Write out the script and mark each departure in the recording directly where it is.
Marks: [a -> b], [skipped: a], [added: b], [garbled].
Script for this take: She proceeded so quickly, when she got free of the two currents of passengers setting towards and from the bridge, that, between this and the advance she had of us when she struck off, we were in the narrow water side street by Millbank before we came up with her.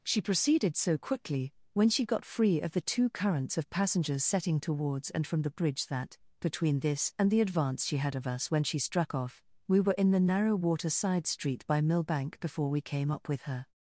She proceeded so quickly, when she got free of the two currents of passengers setting towards and from the bridge, that, between this and the advance she had of us when she struck off, we were in the narrow water side street by Millbank before we came up with her.